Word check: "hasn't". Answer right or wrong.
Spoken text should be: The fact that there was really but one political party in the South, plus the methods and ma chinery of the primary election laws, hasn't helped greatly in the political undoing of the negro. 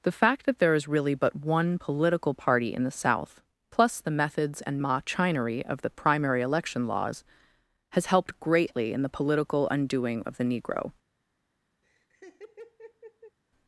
wrong